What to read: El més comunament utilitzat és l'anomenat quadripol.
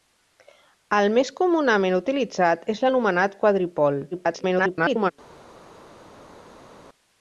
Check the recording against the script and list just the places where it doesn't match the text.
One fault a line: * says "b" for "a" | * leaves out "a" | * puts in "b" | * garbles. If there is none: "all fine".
* garbles